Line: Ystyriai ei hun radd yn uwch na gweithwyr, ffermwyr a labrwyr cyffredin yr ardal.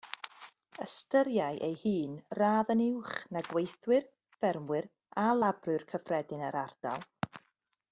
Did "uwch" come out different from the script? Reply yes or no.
no